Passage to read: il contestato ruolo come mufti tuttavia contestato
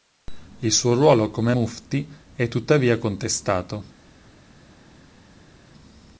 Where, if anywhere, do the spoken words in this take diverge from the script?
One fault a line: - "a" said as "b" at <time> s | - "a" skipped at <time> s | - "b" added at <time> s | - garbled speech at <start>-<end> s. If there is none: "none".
- "contestato" said as "suo" at 0.7 s
- "è" added at 2.3 s